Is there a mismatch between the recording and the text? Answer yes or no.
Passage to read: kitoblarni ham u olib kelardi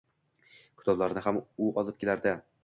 no